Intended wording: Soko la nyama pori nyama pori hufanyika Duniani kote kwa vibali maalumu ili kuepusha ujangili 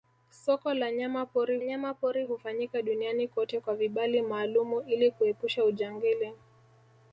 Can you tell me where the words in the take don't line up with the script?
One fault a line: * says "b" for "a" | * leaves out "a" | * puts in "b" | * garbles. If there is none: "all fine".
all fine